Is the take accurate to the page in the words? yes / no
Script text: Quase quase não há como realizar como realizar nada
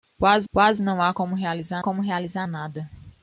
yes